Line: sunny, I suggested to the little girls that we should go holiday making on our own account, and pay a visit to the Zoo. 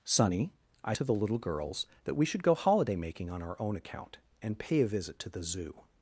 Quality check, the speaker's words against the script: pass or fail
fail